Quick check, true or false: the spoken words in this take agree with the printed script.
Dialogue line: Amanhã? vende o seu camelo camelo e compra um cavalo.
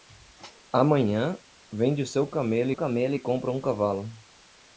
true